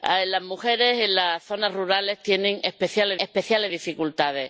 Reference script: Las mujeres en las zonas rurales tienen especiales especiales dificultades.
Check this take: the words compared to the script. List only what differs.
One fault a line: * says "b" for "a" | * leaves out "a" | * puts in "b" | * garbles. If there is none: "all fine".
all fine